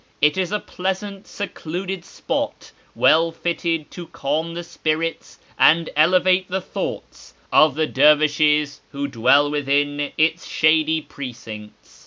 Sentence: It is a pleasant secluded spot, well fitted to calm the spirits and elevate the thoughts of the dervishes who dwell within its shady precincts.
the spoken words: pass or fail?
pass